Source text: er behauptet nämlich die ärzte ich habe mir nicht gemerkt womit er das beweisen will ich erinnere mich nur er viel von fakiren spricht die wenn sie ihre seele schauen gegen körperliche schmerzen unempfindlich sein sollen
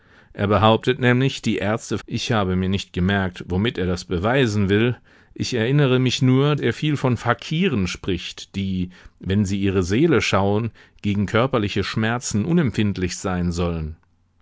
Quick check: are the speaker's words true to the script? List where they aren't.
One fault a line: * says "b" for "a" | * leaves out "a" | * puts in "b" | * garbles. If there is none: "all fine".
all fine